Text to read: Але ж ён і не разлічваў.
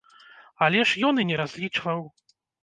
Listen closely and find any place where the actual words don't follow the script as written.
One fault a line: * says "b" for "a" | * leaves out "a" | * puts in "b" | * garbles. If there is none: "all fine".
all fine